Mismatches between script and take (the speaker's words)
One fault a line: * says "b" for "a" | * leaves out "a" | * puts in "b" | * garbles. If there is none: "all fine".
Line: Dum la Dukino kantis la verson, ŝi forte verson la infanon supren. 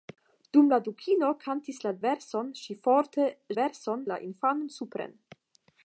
all fine